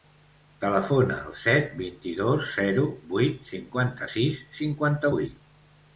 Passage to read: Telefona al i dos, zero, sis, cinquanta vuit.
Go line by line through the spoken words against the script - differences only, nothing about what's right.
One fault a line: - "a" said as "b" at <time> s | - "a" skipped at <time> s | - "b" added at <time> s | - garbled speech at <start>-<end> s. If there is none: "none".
- "set vint" added at 1.4 s
- "vuit cinquanta" added at 3.1 s